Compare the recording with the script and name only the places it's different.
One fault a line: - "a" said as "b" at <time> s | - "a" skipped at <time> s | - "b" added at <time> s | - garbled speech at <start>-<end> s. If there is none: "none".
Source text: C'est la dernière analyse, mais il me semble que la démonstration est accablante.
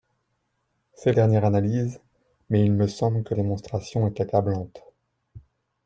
- "la" skipped at 1.1 s
- "la" skipped at 3.3 s